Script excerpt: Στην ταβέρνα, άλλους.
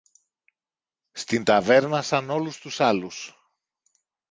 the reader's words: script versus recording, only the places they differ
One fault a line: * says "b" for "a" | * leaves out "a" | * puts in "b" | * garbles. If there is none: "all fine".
* puts in "σαν όλους τους"